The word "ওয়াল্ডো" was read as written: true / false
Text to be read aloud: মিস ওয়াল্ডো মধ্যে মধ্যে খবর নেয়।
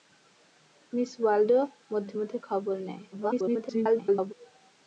true